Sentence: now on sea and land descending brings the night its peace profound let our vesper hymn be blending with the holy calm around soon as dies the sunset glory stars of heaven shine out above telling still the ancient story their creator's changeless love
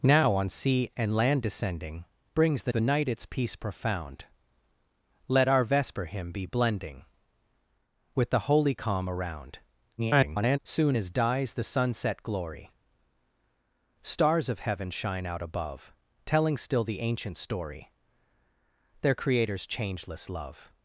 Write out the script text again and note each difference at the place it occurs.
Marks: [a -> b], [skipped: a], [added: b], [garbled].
now on sea and land descending brings the [added: the] night its peace profound let our vesper hymn be blending with the holy calm around [garbled] soon as dies the sunset glory stars of heaven shine out above telling still the ancient story their creator's changeless love